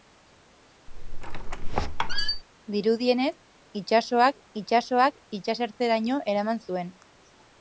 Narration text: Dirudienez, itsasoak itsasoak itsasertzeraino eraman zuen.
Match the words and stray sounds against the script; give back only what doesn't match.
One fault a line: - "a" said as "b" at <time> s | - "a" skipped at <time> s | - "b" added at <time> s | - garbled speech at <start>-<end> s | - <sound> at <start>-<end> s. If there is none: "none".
- squeak at 0.9-2.4 s